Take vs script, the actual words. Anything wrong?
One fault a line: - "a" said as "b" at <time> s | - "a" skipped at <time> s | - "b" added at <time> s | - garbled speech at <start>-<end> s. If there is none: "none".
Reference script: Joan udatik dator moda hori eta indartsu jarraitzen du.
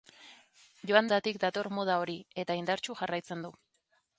none